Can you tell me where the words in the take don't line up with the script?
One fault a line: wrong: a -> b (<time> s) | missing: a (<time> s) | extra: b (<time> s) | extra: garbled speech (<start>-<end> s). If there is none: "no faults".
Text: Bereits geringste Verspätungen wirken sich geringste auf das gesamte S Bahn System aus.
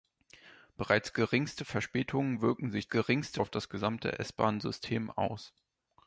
no faults